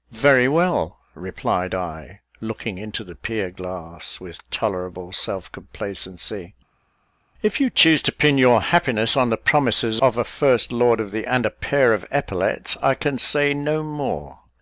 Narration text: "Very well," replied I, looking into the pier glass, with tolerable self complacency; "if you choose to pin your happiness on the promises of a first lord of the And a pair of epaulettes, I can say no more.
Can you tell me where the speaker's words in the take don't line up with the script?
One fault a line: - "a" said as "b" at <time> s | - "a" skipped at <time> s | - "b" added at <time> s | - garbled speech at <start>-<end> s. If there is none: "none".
none